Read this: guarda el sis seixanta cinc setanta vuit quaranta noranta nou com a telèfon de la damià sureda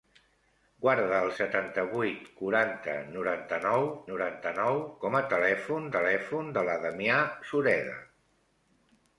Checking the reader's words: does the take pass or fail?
fail